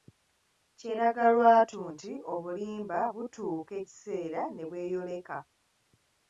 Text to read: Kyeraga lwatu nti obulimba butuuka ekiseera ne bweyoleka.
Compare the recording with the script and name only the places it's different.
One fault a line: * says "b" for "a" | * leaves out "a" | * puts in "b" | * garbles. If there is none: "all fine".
all fine